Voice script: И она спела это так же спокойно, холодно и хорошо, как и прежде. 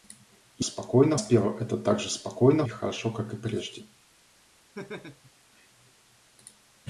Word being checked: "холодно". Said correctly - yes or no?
no